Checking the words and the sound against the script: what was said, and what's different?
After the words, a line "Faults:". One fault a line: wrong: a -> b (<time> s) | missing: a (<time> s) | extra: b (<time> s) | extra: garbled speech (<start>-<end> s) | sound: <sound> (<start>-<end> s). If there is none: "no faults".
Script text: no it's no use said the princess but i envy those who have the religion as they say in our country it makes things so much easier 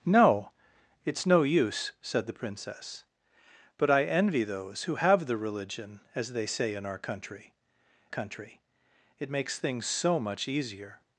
no it's no use said the princess but i envy those who have the religion as they say in our country country it makes things so much easier
Faults:
extra: country (8.1 s)